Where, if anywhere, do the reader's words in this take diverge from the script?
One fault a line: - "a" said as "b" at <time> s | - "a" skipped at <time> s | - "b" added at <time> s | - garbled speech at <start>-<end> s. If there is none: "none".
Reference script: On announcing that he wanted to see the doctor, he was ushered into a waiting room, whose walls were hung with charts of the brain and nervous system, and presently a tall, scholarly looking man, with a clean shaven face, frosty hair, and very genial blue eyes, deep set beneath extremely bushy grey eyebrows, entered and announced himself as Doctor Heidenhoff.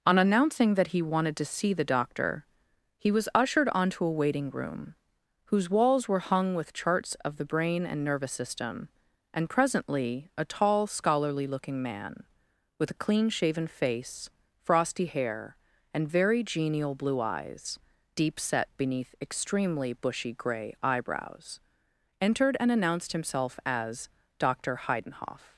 - "into" said as "onto" at 3.7 s